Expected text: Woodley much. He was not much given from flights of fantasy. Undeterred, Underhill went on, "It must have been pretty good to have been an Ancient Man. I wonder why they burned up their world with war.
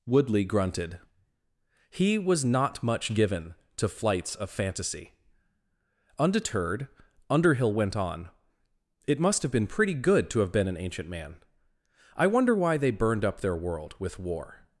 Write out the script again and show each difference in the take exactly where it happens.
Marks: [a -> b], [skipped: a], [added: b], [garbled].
Woodley [much. -> grunted] He was not much given [from -> to] flights of fantasy. Undeterred, Underhill went on, "It must have been pretty good to have been an Ancient Man. I wonder why they burned up their world with war.